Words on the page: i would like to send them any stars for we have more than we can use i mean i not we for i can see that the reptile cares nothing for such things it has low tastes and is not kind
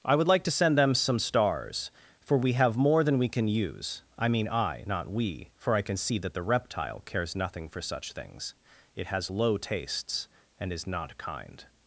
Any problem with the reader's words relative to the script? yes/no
yes